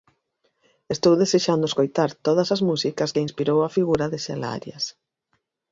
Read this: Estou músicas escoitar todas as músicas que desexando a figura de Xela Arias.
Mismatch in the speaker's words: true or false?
true